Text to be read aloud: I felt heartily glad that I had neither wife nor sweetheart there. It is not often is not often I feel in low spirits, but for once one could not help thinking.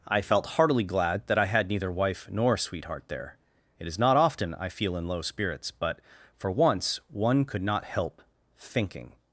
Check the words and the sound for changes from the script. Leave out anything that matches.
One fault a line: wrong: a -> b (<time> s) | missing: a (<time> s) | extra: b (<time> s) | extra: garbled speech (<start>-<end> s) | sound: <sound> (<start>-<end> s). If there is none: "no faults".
missing: is not often (4.5 s)